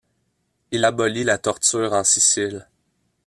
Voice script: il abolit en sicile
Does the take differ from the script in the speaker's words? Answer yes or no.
yes